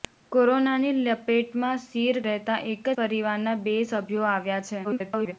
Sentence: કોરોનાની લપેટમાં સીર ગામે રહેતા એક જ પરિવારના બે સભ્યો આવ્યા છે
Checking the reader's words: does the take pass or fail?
fail